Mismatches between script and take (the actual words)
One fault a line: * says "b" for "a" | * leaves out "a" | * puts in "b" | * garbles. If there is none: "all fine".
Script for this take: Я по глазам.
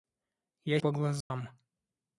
all fine